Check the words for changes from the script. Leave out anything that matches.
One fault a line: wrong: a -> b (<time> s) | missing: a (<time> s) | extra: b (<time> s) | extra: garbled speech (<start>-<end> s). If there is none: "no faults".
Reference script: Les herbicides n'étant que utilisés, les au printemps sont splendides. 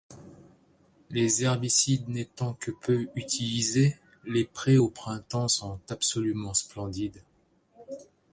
extra: peu (2.7 s)
extra: prés (4.5 s)
extra: absolument (5.9 s)